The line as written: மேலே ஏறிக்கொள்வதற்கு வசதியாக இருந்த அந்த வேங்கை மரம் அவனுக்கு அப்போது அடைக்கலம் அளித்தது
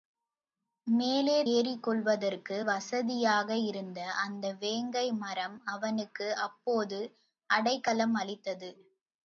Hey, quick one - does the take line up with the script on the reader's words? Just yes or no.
yes